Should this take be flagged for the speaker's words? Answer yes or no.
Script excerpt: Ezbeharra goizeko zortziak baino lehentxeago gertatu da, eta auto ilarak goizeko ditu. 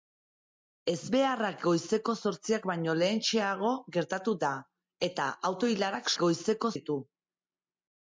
no